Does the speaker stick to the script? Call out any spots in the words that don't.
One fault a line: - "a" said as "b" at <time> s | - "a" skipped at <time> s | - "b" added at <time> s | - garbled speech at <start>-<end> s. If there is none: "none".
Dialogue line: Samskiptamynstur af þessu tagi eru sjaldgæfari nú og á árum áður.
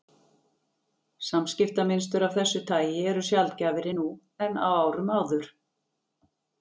- "og" said as "en" at 4.5 s